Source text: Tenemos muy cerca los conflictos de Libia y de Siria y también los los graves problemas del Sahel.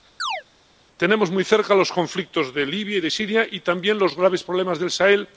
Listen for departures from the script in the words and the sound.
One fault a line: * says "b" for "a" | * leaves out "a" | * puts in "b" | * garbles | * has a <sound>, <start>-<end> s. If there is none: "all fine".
* has a chirp, 0.2-0.4 s
* leaves out "los"